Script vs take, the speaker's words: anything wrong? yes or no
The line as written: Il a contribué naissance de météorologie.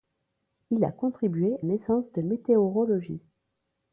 no